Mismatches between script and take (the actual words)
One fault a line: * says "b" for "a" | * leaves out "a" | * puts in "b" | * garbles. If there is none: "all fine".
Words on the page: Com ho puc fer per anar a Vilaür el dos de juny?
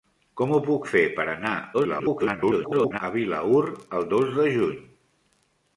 * garbles